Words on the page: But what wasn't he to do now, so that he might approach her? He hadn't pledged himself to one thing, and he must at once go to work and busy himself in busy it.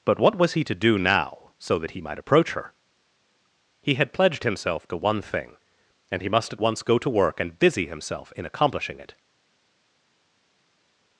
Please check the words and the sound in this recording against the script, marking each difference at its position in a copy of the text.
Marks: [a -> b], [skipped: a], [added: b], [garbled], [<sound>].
But what [wasn't -> was] he to do now, so that he might approach her? He [hadn't -> had] pledged himself to one thing, and he must at once go to work and busy himself in [busy -> accomplishing] it.